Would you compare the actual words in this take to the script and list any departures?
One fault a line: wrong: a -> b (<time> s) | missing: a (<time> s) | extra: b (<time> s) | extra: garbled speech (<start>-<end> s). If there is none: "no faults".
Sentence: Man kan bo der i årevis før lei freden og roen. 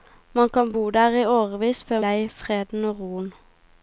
no faults